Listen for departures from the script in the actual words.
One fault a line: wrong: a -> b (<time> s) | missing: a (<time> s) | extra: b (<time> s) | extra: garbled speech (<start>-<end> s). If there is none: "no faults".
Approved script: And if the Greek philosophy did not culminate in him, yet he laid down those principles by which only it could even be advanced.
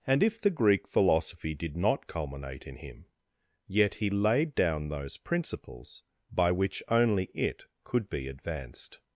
missing: even (8.1 s)